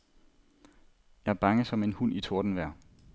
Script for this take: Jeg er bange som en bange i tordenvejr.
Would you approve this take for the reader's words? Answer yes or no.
no